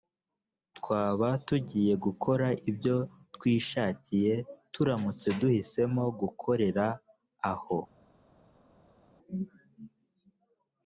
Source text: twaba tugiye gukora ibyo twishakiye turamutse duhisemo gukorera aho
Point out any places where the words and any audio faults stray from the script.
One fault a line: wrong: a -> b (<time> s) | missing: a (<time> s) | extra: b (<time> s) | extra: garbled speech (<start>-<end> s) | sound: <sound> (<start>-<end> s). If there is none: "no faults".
no faults